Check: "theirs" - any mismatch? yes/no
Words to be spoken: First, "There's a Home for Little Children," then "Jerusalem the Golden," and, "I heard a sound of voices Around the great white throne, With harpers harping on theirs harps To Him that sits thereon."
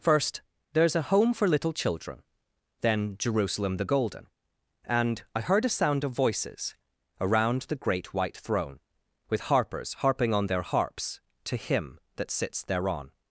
yes